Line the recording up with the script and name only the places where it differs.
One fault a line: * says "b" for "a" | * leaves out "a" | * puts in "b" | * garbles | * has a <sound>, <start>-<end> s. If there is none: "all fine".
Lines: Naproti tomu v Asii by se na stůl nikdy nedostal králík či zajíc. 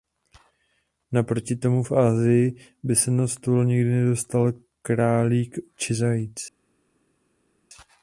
all fine